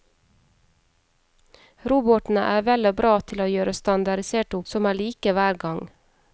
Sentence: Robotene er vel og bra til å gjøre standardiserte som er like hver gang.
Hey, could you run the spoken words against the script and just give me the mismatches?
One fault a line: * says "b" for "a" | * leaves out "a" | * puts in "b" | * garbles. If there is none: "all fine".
all fine